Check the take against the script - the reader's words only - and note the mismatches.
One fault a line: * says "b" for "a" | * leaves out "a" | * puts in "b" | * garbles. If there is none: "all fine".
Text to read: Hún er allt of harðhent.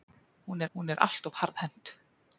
* puts in "hún"